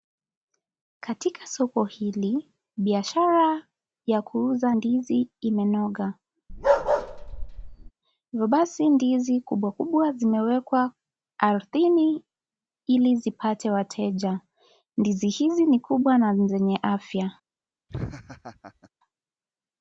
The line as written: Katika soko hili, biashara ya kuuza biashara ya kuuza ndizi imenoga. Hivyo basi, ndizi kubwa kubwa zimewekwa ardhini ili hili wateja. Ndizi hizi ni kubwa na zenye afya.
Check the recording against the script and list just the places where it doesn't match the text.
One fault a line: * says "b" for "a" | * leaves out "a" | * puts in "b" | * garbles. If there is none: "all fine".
* leaves out "biashara ya kuuza"
* says "zipate" for "hili"